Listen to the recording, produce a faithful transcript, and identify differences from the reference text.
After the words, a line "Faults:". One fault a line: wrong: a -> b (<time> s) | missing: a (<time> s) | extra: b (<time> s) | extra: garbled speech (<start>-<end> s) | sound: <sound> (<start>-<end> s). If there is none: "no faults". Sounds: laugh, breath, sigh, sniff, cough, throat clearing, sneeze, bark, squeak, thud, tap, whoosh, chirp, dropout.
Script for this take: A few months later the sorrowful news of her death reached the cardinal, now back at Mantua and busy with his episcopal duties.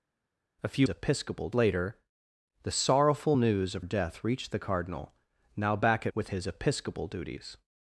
A few episcopal later the sorrowful news of death reached the cardinal, now back at With his episcopal duties.
Faults:
wrong: months -> episcopal (0.9 s)
missing: her (3.8 s)
missing: Mantua and busy (6.1 s)